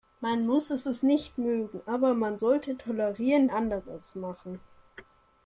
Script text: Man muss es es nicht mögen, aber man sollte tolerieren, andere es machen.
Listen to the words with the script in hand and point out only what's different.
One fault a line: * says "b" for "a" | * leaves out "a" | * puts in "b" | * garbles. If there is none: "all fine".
all fine